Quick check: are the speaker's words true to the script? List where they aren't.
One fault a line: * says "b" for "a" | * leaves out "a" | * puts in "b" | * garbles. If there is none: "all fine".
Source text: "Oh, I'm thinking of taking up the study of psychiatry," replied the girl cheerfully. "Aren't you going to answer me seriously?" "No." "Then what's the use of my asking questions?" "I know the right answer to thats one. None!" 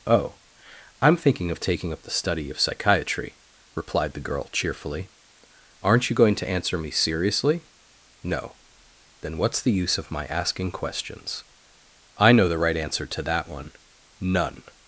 * says "that" for "thats"